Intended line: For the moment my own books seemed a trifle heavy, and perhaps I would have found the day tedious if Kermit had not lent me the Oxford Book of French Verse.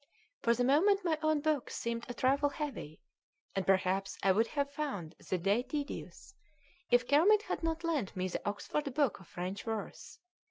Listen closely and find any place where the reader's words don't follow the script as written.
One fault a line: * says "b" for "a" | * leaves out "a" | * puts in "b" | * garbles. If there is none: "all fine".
all fine